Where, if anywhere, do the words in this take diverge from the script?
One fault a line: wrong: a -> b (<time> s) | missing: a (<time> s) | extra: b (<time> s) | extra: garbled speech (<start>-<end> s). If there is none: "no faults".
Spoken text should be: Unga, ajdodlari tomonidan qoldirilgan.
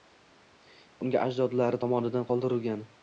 no faults